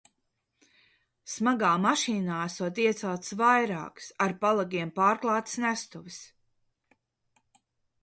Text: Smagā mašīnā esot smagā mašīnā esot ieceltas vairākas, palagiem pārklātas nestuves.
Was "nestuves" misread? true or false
false